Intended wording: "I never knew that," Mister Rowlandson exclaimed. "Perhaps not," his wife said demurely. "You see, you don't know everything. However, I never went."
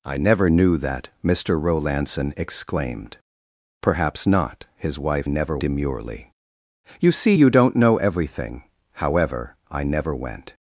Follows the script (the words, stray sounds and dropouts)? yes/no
no